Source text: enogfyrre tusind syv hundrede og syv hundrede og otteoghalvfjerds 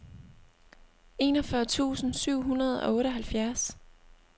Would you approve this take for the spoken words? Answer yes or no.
no